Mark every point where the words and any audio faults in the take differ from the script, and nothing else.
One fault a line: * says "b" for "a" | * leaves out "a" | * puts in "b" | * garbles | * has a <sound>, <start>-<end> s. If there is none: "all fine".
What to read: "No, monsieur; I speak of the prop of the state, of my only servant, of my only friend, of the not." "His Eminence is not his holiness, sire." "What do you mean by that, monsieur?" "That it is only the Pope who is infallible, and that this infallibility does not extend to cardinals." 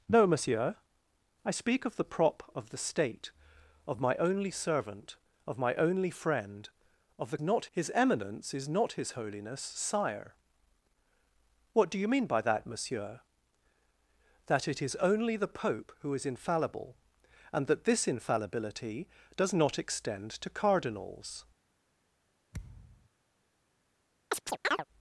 * has a thud, 22.5-23.1 s
* has a chirp, 24.3-24.8 s